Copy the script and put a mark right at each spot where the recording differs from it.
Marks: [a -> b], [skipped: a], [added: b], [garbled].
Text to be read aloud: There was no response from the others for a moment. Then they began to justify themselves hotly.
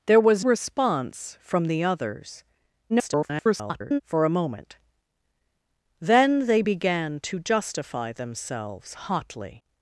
There was [skipped: no] response from the others [garbled] for a moment. Then they began to justify themselves hotly.